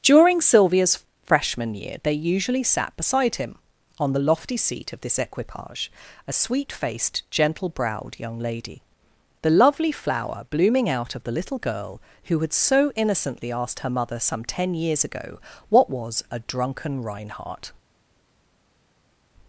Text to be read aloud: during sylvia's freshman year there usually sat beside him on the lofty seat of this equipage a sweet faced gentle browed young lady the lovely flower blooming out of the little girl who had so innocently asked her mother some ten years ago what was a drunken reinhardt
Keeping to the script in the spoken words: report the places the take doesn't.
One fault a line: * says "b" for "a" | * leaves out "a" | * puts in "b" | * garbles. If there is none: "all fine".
* says "they" for "there"